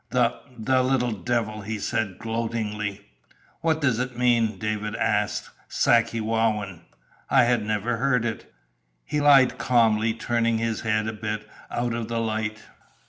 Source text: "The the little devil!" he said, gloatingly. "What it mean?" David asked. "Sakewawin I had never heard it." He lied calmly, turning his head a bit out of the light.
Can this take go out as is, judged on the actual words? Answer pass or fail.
fail